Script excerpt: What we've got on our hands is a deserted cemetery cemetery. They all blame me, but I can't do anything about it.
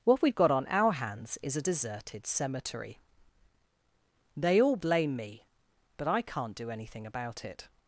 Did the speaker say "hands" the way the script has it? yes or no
yes